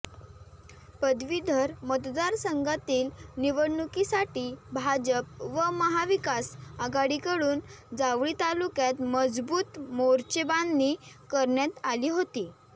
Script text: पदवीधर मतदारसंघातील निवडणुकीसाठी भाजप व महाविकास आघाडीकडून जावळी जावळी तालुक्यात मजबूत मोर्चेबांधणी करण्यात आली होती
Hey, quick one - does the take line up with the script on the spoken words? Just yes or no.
no